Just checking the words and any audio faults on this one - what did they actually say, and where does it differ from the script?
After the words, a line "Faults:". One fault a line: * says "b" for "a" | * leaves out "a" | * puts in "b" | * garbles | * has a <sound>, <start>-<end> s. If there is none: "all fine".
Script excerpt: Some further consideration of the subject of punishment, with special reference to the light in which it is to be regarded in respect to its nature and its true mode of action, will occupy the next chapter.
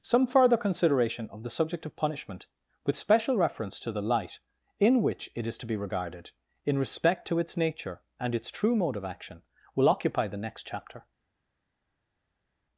Some further consideration of the subject of punishment, with special reference to the light in which it is to be regarded in respect to its nature and its true mode of action, will occupy the next chapter.
Faults:
all fine